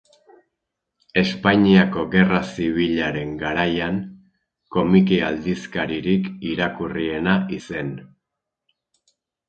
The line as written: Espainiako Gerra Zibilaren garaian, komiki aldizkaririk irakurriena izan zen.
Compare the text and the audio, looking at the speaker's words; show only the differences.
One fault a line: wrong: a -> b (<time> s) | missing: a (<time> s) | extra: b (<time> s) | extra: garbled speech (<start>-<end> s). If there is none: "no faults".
missing: izan (7.4 s)